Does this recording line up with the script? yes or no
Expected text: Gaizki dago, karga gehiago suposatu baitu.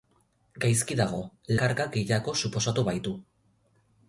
yes